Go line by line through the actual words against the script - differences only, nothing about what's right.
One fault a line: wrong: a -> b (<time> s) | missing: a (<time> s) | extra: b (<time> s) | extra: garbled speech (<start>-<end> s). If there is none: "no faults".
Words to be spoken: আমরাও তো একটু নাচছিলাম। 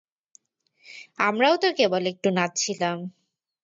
extra: কেবল (1.8 s)